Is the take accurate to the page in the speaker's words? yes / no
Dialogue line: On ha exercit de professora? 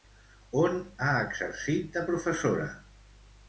yes